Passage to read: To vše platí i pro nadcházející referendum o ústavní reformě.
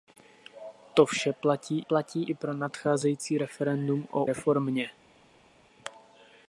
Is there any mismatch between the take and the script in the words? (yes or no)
yes